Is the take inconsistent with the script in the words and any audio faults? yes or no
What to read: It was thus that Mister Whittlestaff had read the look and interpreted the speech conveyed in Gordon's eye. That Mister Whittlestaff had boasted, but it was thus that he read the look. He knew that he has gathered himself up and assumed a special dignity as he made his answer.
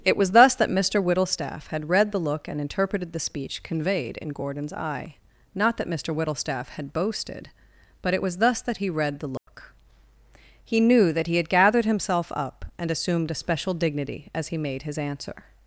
yes